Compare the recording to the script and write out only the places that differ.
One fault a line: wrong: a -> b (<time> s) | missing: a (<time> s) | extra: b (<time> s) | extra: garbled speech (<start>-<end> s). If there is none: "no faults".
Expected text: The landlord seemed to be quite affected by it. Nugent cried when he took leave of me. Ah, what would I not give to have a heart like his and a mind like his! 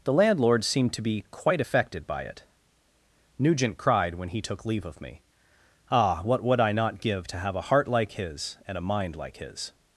no faults